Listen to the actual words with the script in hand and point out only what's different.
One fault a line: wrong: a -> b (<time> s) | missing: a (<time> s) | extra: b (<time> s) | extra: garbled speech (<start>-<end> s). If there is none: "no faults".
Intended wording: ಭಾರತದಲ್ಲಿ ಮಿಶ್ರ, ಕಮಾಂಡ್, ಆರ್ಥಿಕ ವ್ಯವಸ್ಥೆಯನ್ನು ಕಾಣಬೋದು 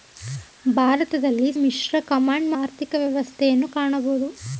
no faults